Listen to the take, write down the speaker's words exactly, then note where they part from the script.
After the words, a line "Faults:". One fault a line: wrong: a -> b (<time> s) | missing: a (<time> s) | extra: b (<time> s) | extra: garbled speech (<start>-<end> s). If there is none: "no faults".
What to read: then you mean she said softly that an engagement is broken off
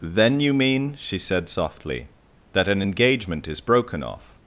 then you mean she said softly that an engagement is broken off
Faults:
no faults